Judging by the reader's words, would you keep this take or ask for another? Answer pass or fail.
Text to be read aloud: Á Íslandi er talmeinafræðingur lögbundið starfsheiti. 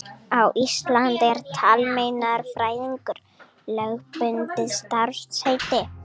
pass